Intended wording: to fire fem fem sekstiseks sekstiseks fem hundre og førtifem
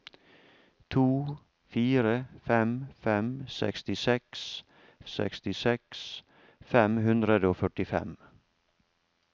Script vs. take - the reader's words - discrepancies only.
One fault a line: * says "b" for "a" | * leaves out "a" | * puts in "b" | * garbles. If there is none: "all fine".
all fine